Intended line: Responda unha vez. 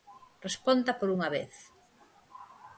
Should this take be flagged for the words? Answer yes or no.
yes